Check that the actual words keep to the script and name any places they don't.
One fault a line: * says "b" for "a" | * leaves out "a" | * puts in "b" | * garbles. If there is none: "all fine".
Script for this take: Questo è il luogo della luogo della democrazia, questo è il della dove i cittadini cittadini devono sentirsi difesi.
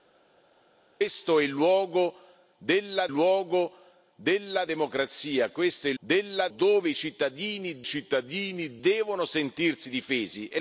all fine